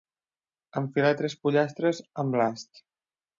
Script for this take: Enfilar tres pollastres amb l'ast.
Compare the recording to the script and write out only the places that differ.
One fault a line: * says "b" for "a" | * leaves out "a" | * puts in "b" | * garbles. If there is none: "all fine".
all fine